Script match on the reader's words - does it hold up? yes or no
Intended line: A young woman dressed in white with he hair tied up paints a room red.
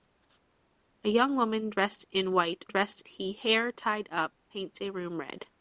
no